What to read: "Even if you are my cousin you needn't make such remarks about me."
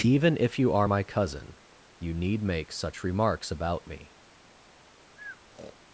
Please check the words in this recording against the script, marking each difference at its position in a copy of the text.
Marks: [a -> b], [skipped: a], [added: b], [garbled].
"Even if you are my cousin you [needn't -> need] make such remarks about me."